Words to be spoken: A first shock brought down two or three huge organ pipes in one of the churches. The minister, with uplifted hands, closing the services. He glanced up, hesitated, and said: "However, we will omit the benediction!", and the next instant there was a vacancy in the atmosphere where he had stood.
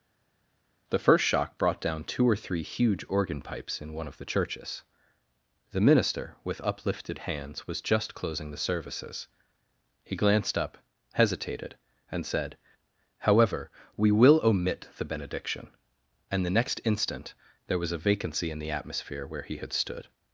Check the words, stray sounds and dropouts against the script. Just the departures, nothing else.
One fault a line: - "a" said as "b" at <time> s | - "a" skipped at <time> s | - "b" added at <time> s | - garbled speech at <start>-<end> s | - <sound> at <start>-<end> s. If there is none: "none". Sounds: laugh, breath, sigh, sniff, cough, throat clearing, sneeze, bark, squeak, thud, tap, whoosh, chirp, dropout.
- "A" said as "The" at 0.9 s
- "was just" added at 7.7 s